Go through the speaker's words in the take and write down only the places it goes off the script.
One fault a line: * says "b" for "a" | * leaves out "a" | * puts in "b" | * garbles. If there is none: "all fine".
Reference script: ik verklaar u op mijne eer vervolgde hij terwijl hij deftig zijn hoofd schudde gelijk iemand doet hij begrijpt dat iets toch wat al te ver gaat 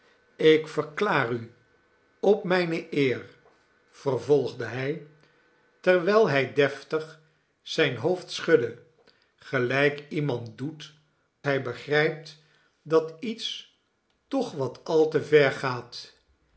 all fine